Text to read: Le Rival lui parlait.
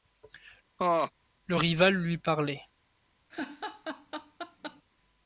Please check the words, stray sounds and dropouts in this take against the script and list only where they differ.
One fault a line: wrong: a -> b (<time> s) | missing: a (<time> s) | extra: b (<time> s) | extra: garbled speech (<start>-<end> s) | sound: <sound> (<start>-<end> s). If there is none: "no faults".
sound: laugh (0.8-1.1 s)
sound: laugh (3.3-4.8 s)